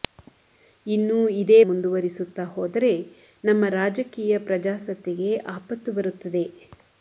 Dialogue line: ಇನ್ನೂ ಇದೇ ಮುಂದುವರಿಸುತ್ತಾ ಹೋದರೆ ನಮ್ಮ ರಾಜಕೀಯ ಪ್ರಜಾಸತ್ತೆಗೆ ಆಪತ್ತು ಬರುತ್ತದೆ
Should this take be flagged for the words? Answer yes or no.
no